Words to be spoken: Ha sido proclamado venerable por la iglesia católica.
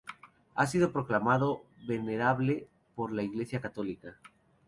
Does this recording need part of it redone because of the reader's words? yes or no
no